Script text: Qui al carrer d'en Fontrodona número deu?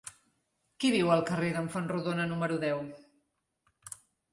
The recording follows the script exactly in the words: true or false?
false